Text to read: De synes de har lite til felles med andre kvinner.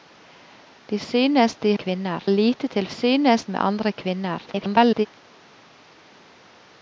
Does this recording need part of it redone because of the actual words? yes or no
yes